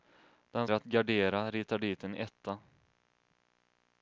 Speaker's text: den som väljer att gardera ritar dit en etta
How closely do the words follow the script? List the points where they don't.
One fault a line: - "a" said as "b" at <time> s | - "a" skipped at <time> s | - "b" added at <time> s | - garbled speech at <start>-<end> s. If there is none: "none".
- "som väljer" skipped at 0.7 s